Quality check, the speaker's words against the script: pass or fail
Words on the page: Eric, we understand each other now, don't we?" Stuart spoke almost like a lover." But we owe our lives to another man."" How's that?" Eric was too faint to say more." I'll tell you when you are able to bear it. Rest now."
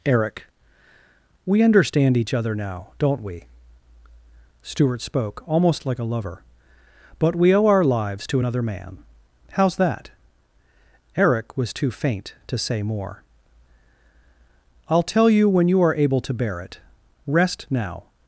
pass